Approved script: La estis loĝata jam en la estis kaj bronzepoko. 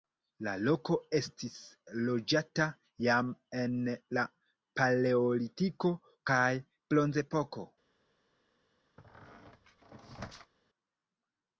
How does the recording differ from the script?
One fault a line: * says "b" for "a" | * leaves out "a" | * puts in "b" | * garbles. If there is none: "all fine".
* puts in "loko"
* says "paleolitiko" for "estis"